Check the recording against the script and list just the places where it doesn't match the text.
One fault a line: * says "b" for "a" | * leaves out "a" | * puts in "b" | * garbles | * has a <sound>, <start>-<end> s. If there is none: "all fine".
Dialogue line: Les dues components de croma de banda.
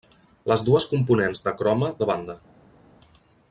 all fine